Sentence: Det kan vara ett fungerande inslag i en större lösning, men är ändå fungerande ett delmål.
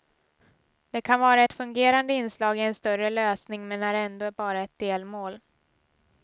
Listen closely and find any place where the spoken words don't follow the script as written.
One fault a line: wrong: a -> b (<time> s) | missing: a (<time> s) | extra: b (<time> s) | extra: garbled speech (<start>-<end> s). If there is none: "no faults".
wrong: fungerande -> bara (4.3 s)